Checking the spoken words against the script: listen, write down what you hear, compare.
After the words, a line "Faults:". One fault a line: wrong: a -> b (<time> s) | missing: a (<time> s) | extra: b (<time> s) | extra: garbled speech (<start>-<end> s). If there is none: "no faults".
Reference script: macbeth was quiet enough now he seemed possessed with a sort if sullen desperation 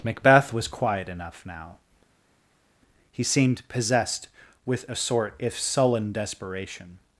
macbeth was quiet enough now he seemed possessed with a sort if sullen desperation
Faults:
no faults